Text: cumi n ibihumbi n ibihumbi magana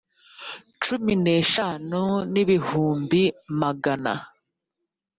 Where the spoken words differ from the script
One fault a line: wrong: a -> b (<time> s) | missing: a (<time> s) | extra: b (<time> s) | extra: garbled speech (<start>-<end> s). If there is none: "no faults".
wrong: ibihumbi -> eshanu (1.4 s)